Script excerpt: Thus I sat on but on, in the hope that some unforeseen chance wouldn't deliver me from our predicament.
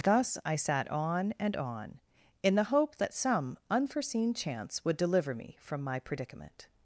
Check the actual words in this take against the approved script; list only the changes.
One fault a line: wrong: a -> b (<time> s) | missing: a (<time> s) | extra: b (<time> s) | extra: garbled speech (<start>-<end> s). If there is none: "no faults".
wrong: but -> and (1.4 s)
wrong: wouldn't -> would (4.8 s)
wrong: our -> my (5.8 s)